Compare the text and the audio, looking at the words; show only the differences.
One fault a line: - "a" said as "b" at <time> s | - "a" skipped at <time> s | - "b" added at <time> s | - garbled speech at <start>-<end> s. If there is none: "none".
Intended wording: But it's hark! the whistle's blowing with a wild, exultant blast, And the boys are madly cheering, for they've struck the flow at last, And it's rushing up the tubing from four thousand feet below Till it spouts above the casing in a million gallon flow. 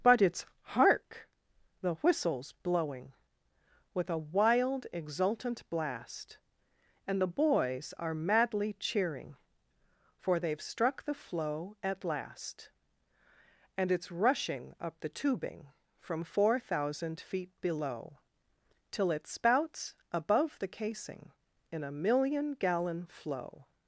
none